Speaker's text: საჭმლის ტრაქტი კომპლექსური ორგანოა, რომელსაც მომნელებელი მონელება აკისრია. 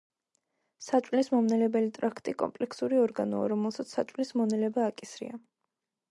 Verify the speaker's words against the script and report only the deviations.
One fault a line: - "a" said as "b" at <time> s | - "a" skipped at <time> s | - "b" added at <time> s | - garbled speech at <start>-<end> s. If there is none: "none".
- "მომნელებელი" added at 1.3 s
- "მომნელებელი" said as "საჭმლის" at 4.0 s